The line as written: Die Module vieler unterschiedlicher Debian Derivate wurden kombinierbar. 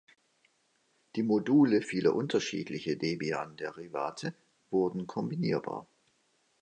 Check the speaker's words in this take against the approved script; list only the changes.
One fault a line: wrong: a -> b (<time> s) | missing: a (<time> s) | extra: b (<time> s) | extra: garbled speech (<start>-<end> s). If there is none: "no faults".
no faults